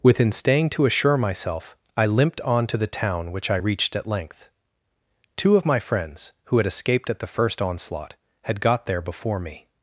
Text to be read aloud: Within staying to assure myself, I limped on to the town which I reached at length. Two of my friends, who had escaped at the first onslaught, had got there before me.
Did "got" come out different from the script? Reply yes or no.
no